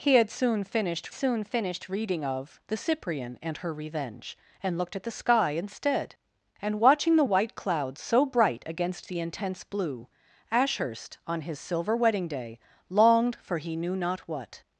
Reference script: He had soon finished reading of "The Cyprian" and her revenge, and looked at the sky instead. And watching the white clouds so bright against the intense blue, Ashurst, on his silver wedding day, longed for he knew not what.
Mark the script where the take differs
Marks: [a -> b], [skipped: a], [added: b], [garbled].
He had soon finished [added: soon finished] reading of "The Cyprian" and her revenge, and looked at the sky instead. And watching the white clouds so bright against the intense blue, Ashurst, on his silver wedding day, longed for he knew not what.